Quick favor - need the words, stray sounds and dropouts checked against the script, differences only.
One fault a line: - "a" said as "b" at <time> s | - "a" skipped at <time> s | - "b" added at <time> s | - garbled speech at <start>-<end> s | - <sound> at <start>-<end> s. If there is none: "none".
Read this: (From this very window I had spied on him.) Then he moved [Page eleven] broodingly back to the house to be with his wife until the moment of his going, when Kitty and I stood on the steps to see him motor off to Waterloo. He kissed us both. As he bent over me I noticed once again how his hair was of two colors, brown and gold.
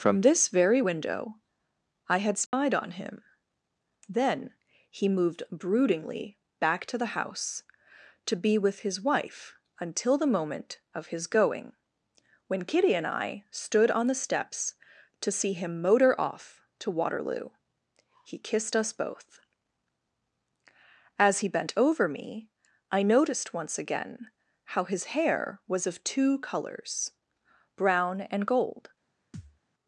- dropout at 2.5-2.5 s
- "Page eleven" skipped at 5.4 s
- thud at 29.3-29.6 s